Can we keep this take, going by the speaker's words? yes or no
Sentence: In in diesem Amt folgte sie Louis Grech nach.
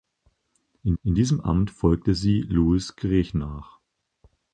yes